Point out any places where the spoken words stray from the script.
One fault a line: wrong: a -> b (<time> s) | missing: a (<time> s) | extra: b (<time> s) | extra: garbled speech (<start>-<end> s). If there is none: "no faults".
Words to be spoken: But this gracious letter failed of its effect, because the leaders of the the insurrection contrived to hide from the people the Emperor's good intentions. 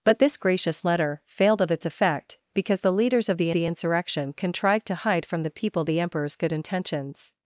no faults